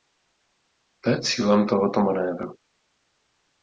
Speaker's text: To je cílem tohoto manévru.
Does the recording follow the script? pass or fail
pass